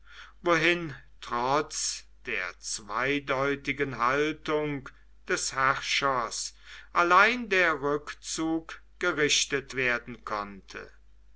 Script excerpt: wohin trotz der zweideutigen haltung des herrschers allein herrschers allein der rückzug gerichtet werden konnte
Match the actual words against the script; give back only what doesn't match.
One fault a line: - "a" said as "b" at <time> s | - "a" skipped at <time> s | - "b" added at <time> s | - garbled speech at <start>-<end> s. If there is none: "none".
- "herrschers allein" skipped at 7.5 s